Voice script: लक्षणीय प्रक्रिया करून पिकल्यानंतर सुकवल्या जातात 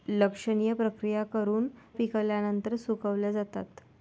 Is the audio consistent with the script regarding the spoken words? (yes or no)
yes